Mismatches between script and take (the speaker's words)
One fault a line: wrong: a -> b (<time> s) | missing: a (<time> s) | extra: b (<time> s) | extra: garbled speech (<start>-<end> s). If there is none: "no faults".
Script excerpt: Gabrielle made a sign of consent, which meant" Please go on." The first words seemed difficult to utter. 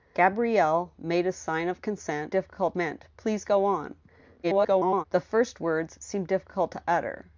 wrong: which -> difficult (2.3 s)
extra: garbled speech (4.4-5.0 s)